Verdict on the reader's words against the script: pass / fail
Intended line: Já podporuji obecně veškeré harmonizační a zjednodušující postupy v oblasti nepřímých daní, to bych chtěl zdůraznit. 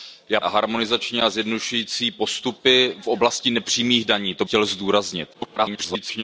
fail